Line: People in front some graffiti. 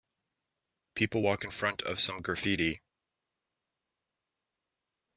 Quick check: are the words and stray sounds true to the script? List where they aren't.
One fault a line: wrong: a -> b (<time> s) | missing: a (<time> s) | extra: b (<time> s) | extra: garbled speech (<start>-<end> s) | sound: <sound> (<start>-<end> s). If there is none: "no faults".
extra: walk (1.2 s)
extra: of (1.8 s)